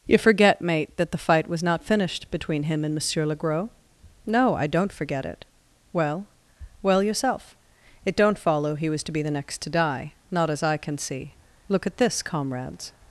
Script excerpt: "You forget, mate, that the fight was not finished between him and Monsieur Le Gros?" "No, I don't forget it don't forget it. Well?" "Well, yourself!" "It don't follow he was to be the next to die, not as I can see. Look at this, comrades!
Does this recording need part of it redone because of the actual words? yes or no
yes